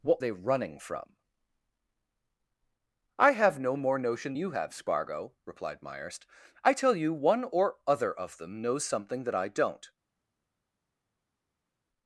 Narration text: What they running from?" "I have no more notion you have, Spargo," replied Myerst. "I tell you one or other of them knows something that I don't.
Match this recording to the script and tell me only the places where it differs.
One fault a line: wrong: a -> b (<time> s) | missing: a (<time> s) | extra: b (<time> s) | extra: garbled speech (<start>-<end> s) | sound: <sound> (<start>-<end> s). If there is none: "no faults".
no faults